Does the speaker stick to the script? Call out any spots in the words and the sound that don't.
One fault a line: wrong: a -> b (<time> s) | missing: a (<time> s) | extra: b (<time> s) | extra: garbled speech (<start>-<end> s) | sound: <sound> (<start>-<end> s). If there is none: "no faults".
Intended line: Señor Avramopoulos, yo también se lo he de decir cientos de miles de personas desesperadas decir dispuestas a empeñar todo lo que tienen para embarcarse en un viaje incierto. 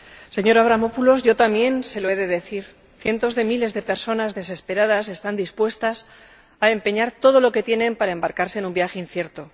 wrong: decir -> están (5.1 s)